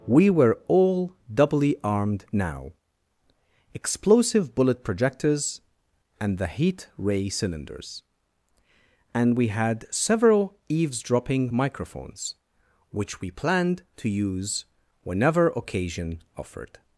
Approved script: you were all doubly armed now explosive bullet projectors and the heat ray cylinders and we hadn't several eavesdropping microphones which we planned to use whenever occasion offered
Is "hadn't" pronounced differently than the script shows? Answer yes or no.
yes